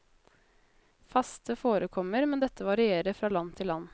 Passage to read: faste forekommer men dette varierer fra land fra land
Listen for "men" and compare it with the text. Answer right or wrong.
right